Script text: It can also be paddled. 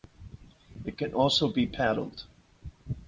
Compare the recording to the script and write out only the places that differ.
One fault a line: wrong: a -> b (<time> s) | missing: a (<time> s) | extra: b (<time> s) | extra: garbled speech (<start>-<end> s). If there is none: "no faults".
no faults